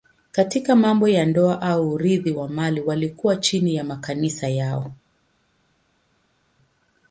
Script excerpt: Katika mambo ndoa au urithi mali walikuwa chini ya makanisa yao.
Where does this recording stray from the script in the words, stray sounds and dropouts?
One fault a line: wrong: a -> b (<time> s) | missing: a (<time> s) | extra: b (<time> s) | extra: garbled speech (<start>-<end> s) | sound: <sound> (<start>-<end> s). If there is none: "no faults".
extra: ya (1.1 s)
extra: wa (2.3 s)